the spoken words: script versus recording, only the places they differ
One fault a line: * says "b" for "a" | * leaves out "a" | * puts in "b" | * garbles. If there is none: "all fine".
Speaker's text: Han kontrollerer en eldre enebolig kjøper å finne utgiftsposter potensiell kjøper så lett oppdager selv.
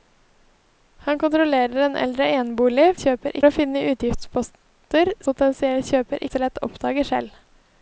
all fine